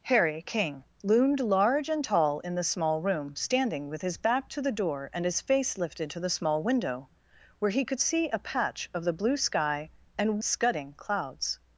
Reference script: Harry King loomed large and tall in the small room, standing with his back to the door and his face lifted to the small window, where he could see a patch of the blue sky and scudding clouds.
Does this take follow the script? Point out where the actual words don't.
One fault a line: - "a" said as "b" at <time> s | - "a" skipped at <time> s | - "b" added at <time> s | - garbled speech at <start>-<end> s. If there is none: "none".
none